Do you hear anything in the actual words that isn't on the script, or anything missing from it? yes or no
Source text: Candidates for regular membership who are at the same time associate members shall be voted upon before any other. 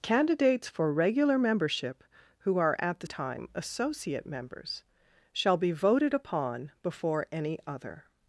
yes